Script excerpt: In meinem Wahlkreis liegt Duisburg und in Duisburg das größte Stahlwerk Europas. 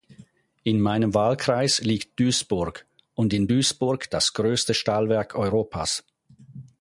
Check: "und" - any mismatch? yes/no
no